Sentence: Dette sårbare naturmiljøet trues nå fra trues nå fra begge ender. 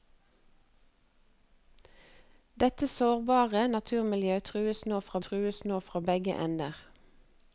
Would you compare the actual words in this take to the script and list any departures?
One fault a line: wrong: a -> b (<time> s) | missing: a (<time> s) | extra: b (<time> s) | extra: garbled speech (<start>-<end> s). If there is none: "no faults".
no faults